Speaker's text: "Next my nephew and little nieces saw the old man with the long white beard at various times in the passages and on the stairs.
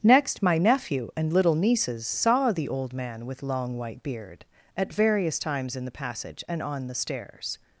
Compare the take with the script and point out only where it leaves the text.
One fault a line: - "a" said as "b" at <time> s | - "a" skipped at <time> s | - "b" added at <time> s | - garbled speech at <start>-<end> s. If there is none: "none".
- "the" skipped at 3.4 s
- "passages" said as "passage" at 5.9 s